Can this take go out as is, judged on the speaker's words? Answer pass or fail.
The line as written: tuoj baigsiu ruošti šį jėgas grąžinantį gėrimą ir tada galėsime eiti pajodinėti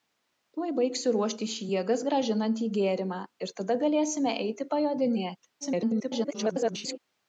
fail